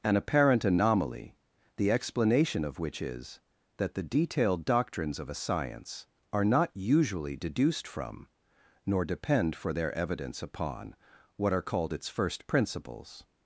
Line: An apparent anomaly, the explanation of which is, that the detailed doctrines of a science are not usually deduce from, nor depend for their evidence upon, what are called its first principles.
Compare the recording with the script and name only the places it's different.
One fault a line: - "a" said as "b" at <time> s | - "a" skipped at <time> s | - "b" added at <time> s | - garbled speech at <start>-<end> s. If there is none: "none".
- "deduce" said as "deduced" at 7.3 s